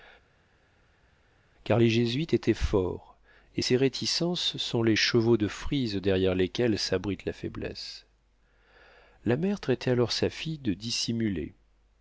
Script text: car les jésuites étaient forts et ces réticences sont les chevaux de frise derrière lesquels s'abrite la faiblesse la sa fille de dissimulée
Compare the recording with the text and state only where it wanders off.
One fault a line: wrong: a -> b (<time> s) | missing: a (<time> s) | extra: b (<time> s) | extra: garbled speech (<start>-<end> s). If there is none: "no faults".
extra: mère traitait alors (9.4 s)